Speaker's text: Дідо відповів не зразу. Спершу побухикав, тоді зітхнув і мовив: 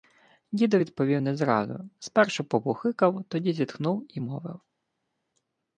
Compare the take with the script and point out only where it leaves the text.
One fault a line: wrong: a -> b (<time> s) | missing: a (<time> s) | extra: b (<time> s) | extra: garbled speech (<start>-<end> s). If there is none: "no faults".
no faults